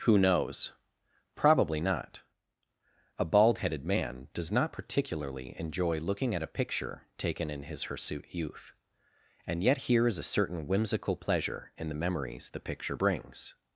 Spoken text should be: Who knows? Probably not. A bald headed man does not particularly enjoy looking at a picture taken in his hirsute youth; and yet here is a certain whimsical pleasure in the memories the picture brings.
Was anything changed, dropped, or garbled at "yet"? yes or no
no